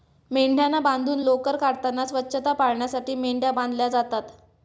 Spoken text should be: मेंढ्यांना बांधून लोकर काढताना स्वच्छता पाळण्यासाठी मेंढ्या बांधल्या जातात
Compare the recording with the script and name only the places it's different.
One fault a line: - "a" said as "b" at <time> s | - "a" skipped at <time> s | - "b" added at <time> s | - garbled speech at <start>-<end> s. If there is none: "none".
none